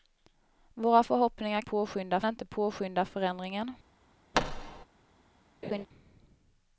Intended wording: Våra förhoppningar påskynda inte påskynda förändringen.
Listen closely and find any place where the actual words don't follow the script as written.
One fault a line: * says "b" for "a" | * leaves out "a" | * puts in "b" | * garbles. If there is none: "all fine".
all fine